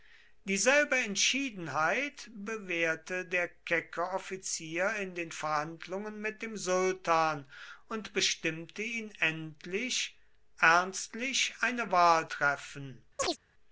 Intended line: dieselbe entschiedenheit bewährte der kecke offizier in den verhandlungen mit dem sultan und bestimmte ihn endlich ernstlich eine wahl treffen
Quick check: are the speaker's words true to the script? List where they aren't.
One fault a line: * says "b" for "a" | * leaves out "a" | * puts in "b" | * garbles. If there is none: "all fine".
all fine